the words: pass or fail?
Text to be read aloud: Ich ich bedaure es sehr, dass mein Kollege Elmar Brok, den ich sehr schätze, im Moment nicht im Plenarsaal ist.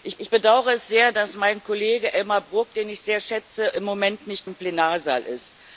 pass